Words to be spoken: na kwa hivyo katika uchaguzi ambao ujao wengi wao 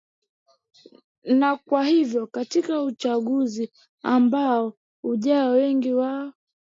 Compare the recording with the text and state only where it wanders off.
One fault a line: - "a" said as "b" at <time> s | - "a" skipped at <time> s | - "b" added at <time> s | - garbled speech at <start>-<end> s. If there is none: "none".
none